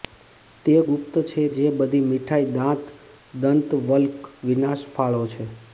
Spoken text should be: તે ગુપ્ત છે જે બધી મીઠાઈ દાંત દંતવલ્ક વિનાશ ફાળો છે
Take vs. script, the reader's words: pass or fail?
pass